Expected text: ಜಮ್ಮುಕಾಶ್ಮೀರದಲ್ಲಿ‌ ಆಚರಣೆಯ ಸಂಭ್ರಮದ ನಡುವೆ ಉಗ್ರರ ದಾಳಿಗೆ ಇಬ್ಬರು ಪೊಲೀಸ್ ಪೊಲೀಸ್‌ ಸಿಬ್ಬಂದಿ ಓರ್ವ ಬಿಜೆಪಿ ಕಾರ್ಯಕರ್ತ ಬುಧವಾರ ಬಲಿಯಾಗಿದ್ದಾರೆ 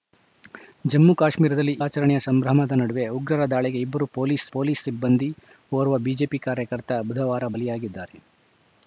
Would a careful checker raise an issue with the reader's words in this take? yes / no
no